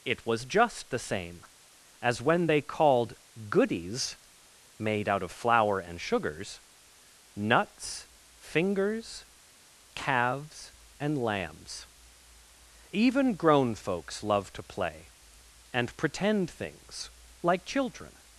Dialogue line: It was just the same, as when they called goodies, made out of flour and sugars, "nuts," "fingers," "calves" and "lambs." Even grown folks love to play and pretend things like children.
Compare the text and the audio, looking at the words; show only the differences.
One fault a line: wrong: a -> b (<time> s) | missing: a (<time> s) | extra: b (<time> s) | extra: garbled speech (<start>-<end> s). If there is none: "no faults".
no faults